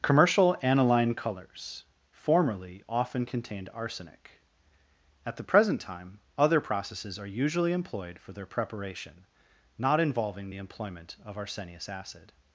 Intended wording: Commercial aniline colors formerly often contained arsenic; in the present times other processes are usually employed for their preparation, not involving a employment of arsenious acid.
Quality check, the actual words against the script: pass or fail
fail